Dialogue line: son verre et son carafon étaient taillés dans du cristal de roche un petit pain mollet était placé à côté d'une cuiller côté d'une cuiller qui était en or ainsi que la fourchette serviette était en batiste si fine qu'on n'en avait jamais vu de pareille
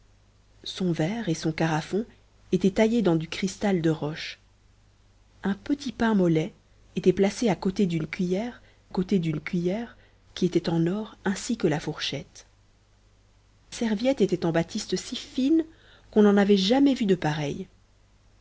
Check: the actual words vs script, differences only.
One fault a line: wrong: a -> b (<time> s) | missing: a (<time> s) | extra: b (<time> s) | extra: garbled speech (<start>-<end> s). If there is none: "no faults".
no faults